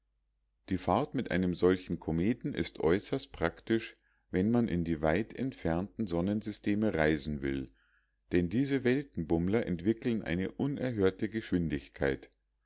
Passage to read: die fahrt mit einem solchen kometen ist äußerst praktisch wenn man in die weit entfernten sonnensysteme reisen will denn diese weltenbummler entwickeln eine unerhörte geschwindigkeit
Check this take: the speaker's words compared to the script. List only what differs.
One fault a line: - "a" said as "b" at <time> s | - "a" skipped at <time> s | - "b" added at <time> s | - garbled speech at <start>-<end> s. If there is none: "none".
none